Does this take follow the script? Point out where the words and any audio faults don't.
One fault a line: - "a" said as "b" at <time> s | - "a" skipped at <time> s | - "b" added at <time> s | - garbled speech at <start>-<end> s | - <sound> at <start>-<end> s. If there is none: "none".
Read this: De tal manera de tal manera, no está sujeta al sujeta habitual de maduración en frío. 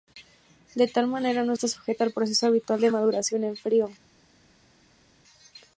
- "de tal manera" skipped at 1.4 s
- "sujeta" said as "proceso" at 2.1 s